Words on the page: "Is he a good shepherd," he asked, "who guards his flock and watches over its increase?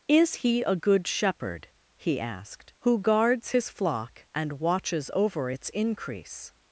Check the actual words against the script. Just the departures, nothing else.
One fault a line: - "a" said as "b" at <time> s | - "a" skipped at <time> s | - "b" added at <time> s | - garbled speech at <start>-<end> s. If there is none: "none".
none